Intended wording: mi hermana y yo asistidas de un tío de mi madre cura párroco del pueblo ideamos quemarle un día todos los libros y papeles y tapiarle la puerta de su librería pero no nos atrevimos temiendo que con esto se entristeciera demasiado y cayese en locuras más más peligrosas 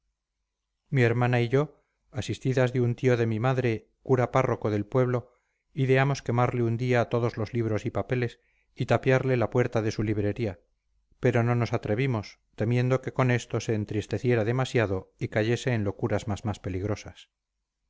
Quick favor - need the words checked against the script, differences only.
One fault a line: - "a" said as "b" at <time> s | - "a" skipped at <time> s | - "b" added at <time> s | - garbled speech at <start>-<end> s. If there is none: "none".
none